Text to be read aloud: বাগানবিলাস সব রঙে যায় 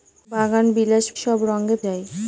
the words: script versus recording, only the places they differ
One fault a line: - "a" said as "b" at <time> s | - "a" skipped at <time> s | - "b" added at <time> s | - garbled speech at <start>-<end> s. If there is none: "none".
none